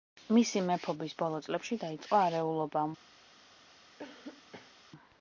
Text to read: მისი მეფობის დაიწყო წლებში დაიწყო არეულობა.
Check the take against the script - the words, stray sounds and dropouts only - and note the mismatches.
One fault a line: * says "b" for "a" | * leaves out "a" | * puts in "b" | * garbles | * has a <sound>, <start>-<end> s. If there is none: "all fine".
* says "ბოლო" for "დაიწყო"
* has a cough, 4.0-4.7 s